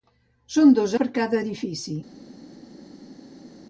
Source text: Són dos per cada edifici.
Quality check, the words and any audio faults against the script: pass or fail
pass